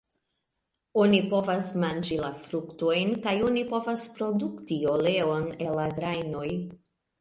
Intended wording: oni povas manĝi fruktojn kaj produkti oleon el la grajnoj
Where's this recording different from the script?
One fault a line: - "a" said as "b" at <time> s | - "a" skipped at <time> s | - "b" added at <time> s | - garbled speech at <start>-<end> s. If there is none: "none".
- "la" added at 2.2 s
- "oni povas" added at 3.5 s